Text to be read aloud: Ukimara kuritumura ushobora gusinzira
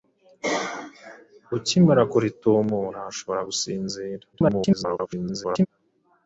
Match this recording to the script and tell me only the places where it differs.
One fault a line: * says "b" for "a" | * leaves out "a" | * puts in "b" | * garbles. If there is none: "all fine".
* garbles